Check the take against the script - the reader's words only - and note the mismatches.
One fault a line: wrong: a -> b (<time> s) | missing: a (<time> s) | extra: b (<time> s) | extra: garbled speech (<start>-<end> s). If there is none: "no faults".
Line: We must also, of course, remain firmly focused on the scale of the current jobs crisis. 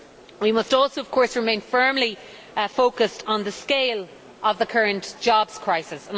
no faults